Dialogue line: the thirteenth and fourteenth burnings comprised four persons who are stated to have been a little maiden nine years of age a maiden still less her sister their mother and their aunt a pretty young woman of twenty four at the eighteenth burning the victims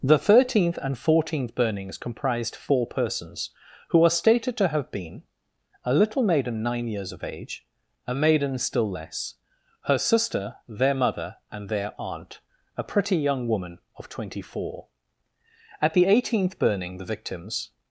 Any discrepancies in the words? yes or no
no